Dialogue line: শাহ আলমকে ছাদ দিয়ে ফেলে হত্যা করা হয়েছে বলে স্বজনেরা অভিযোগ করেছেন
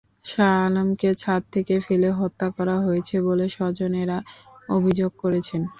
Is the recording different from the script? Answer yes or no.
yes